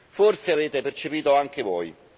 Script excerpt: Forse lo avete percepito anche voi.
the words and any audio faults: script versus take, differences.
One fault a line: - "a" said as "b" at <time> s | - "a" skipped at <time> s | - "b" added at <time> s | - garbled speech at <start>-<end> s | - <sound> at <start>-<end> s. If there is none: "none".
- "lo" skipped at 0.6 s